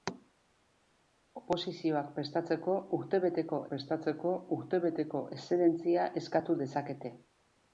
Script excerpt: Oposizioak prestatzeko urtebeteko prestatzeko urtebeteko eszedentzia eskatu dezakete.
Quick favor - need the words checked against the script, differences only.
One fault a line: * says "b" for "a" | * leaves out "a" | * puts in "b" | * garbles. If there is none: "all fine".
all fine